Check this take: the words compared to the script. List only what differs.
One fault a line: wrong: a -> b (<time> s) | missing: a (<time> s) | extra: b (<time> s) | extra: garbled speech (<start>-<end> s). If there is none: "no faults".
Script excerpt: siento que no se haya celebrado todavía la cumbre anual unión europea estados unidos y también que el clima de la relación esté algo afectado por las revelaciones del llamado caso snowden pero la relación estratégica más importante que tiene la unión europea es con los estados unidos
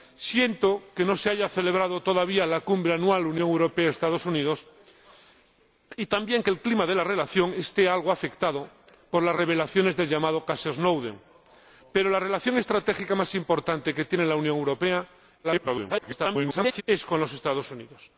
extra: garbled speech (15.4-16.8 s)